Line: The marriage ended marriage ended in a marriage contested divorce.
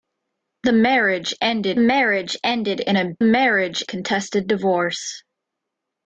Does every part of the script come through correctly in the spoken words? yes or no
yes